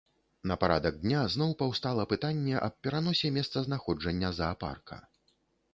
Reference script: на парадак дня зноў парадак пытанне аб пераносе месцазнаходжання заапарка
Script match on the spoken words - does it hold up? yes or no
no